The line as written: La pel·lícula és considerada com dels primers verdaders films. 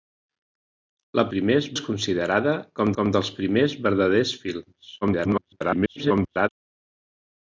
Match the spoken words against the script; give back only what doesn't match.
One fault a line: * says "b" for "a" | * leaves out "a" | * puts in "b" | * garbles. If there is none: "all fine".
* says "primers" for "pel·lícula"
* puts in "com"
* garbles